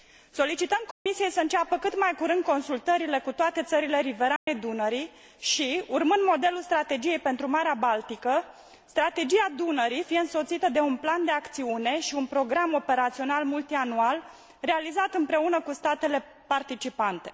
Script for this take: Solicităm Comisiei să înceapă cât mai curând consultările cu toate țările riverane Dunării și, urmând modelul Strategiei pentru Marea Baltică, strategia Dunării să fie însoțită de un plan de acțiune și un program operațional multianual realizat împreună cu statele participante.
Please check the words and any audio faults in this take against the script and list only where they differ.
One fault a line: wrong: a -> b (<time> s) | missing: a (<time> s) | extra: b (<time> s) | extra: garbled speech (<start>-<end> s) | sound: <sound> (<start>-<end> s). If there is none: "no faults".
sound: dropout (0.9-1.1 s)
sound: dropout (4.4-4.5 s)
missing: să (10.0 s)